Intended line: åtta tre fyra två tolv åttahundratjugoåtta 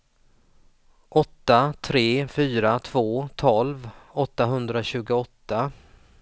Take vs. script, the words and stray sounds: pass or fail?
pass